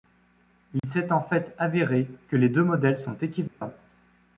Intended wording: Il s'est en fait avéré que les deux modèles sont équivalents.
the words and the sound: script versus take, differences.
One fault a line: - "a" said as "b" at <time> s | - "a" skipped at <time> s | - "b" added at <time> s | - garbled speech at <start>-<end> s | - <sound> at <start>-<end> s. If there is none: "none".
- dropout at 0.8-0.8 s
- dropout at 3.5-3.6 s